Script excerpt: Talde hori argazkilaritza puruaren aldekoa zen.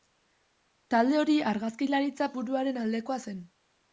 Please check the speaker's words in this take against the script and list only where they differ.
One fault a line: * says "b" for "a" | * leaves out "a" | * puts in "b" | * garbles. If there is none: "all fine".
all fine